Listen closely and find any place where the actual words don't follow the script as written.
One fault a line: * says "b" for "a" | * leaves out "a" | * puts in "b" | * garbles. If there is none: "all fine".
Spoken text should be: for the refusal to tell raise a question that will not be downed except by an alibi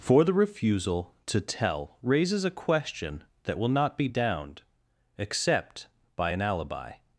* says "raises" for "raise"